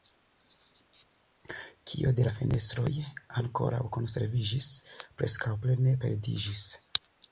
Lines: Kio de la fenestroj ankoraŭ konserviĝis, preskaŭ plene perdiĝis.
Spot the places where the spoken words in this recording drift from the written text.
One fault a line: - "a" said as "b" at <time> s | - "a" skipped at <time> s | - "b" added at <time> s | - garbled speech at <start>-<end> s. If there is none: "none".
none